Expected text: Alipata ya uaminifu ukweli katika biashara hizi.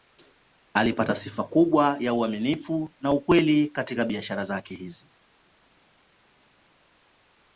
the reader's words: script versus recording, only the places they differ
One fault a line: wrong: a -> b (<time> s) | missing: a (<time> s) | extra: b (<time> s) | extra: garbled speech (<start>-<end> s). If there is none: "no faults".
extra: sifa kubwa (1.1 s)
extra: na (3.0 s)
extra: zake (4.4 s)